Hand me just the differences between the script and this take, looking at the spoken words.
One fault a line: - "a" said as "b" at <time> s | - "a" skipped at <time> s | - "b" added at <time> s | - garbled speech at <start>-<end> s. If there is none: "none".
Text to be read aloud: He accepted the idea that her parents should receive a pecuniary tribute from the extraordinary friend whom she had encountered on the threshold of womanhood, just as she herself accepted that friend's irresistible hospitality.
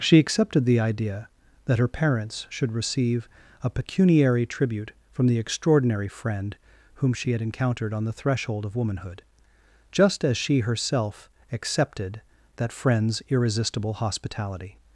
- "He" said as "She" at 0.0 s